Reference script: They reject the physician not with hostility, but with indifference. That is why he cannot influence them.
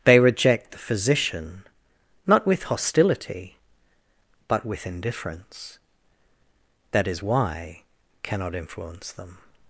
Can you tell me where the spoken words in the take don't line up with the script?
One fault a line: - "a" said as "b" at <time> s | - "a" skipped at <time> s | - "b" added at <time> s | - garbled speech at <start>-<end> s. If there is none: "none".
- "he" skipped at 7.8 s